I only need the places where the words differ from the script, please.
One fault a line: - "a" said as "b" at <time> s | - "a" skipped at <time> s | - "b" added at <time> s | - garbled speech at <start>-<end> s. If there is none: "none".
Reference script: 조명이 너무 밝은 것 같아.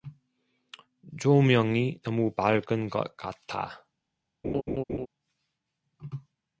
none